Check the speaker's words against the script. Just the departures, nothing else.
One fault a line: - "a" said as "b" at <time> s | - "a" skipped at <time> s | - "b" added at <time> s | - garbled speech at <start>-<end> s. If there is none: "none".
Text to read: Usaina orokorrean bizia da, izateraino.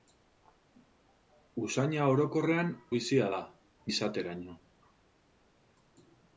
none